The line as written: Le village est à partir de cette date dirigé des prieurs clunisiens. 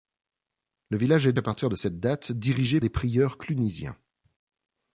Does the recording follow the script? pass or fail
pass